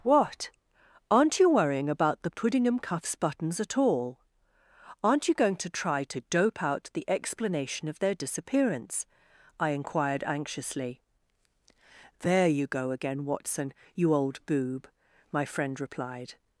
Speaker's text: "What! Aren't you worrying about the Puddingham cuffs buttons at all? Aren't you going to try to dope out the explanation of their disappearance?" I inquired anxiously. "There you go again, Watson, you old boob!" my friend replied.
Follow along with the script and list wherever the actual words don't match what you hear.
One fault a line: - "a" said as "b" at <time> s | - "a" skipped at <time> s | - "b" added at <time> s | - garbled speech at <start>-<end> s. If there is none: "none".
none